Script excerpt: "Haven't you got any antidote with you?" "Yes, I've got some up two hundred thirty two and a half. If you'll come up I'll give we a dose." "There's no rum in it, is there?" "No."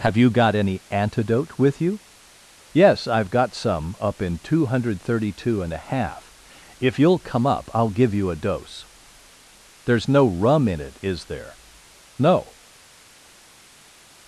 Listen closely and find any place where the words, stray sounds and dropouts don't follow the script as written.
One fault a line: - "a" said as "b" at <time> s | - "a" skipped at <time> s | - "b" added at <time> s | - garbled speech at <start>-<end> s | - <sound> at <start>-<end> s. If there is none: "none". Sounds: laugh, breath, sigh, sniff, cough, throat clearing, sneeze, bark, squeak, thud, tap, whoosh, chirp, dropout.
- "Haven't" said as "Have" at 0.0 s
- "in" added at 4.2 s
- "we" said as "you" at 8.1 s